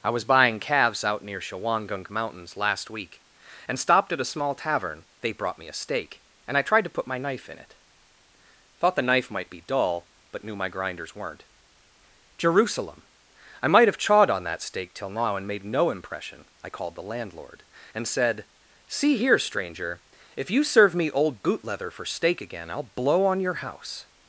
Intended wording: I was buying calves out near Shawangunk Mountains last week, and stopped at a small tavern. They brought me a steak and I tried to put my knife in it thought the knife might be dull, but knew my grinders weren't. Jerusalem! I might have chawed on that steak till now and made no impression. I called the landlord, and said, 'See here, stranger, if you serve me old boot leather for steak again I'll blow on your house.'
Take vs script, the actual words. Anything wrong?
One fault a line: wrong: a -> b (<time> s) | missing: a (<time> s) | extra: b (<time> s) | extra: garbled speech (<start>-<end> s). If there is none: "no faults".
no faults